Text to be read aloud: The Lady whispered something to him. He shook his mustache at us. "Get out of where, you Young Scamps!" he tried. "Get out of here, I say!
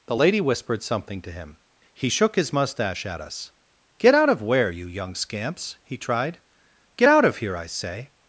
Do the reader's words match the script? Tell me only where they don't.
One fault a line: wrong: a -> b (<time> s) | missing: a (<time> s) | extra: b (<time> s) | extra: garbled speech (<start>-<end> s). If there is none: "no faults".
no faults